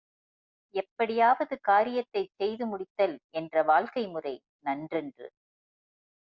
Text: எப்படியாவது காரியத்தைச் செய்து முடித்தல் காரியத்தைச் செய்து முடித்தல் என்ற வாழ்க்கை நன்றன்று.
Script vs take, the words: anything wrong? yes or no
yes